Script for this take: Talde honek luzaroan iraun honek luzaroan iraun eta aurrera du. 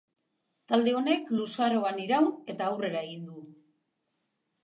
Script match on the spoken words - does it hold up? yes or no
no